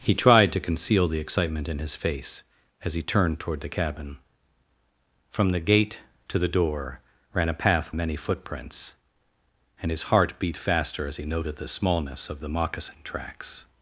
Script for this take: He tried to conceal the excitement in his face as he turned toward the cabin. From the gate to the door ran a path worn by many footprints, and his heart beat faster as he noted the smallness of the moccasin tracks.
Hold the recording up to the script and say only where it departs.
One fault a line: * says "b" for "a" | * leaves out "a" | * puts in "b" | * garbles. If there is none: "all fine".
* leaves out "worn by"